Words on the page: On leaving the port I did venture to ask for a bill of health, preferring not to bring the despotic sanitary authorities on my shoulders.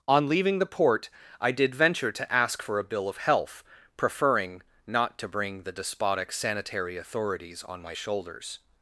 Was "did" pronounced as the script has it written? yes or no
yes